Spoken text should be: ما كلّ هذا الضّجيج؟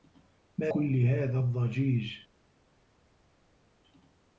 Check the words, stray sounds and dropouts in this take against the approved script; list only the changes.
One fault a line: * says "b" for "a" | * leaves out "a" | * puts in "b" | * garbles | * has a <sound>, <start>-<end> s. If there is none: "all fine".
all fine